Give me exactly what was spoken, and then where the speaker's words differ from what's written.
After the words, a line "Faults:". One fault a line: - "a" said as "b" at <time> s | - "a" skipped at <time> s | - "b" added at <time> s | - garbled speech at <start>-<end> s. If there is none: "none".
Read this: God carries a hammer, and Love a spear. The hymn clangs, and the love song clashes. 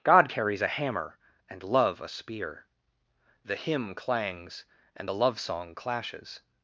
God carries a hammer, and Love a spear. The hymn clangs, and the love song clashes.
Faults:
none